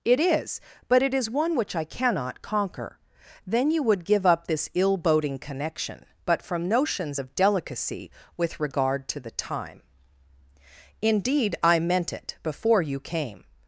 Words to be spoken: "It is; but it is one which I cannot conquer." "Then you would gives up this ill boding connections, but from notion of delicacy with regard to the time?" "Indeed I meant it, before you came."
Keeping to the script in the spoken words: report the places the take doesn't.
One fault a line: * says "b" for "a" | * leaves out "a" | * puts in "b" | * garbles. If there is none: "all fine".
* says "give" for "gives"
* says "connection" for "connections"
* says "notions" for "notion"